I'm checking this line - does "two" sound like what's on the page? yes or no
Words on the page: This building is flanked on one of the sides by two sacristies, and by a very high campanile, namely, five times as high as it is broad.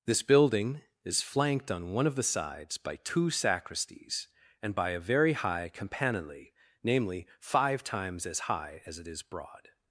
yes